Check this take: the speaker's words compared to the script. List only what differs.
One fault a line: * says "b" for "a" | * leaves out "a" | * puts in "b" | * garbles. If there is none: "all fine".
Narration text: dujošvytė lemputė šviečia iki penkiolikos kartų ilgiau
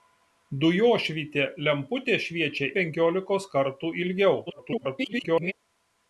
* leaves out "iki"
* garbles